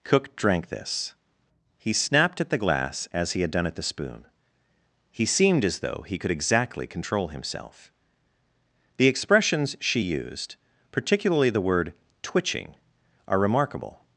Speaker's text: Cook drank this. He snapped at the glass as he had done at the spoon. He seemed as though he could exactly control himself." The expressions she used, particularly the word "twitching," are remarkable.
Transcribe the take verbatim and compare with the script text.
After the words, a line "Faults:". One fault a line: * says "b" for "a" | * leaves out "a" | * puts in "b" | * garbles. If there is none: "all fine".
Cook drank this. He snapped at the glass as he had done at the spoon. He seemed as though he could exactly control himself." The expressions she used, particularly the word "twitching," are remarkable.
Faults:
all fine